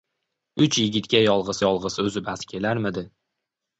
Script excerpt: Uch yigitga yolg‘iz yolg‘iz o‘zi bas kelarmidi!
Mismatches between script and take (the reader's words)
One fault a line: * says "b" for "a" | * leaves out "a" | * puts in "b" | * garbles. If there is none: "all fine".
all fine